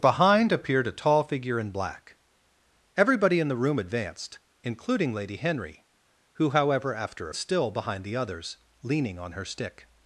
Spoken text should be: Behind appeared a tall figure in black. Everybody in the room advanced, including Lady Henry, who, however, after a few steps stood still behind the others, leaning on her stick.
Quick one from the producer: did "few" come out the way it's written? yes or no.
no